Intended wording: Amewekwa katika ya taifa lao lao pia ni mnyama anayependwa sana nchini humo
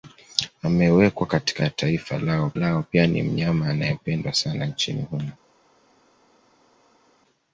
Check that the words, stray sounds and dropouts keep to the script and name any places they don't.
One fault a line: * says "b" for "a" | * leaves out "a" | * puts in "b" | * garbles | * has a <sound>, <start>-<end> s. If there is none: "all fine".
all fine